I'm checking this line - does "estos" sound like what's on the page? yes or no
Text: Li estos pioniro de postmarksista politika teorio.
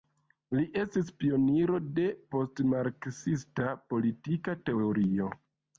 no